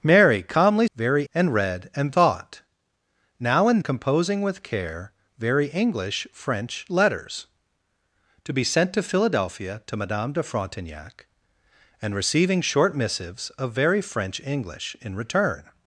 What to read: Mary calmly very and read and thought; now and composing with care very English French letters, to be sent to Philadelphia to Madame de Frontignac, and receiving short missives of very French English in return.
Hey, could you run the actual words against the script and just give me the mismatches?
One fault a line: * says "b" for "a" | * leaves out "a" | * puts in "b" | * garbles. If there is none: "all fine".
all fine